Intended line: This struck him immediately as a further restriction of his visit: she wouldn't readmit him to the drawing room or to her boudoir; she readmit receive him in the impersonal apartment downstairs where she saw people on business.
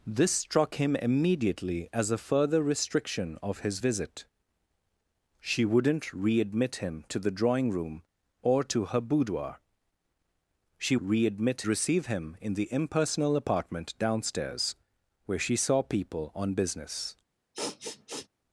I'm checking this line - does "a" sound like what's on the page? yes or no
yes